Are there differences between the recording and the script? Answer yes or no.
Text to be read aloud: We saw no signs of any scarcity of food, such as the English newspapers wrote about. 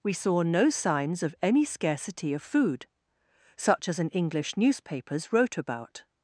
yes